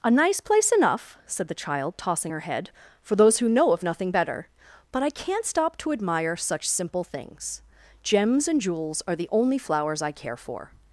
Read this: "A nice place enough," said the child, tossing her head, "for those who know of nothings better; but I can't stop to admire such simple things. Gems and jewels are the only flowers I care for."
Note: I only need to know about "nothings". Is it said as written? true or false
false